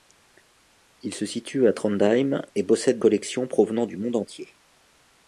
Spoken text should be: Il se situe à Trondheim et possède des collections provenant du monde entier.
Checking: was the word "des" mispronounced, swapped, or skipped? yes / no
yes